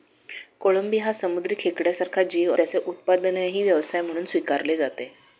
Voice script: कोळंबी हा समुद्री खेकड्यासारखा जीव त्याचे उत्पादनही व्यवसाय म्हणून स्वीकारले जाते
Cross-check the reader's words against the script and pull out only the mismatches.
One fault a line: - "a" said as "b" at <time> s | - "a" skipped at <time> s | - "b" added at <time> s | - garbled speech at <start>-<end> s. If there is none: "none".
none